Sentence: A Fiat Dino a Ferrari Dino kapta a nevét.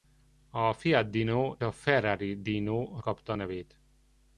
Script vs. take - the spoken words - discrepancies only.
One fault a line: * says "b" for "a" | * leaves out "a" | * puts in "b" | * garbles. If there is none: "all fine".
all fine